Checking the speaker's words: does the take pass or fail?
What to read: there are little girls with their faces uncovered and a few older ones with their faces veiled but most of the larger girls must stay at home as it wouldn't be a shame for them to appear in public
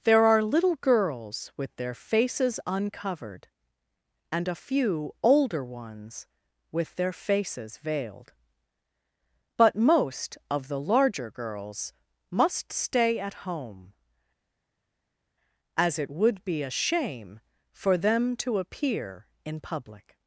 fail